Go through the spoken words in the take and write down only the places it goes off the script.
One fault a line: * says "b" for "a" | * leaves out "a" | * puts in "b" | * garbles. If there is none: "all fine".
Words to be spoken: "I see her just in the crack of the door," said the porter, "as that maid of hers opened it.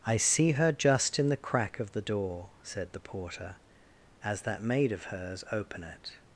* says "open" for "opened"